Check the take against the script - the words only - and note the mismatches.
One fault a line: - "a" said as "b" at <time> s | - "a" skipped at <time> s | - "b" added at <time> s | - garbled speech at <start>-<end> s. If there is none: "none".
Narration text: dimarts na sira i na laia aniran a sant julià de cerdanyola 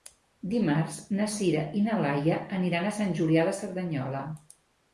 none